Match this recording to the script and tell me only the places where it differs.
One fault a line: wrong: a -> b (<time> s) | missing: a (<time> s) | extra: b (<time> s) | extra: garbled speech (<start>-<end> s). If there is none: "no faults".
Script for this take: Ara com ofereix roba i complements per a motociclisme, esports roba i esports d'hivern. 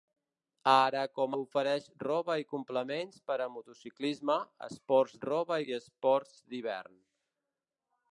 no faults